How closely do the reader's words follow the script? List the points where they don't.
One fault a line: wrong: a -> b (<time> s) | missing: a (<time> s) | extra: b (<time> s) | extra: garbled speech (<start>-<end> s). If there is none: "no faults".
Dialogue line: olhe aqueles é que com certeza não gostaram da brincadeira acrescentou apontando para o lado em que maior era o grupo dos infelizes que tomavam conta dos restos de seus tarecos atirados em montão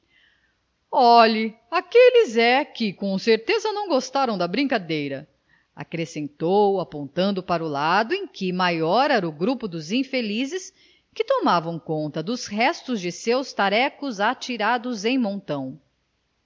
no faults